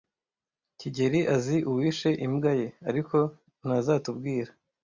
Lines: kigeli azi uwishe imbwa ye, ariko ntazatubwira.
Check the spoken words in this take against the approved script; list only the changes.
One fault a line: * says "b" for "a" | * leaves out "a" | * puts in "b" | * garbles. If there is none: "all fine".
all fine